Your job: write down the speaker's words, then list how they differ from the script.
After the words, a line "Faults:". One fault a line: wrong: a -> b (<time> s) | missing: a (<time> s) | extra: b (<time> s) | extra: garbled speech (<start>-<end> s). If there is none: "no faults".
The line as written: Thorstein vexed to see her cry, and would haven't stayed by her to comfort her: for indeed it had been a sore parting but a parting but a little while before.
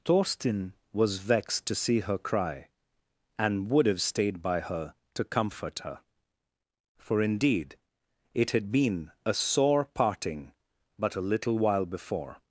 Thorstein was vexed to see her cry, and would have stayed by her to comfort her: for indeed it had been a sore parting but a little while before.
Faults:
extra: was (0.9 s)
wrong: haven't -> have (3.9 s)
missing: parting but a (11.3 s)